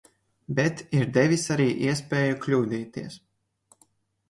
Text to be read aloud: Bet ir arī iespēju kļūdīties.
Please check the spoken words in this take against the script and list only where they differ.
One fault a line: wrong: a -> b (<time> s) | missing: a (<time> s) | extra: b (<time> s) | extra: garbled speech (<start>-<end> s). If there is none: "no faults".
extra: devis (1.2 s)